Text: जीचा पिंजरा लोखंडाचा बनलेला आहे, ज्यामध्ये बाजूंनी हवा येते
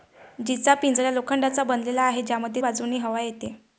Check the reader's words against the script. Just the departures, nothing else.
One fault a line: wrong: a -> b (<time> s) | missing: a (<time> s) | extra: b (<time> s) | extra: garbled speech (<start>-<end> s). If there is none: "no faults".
no faults